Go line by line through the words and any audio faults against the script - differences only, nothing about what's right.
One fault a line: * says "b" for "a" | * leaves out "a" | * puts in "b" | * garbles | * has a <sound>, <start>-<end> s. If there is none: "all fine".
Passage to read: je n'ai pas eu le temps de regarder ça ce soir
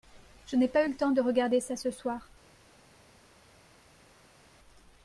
all fine